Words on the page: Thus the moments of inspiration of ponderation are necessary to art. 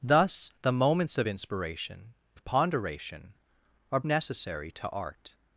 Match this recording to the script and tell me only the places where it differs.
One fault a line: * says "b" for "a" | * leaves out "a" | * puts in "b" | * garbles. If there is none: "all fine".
all fine